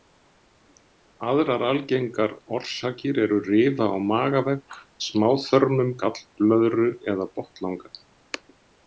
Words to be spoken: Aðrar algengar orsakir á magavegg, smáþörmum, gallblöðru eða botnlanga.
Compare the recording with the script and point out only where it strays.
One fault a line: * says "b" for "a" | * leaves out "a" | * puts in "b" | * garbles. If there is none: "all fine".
* puts in "eru rifa"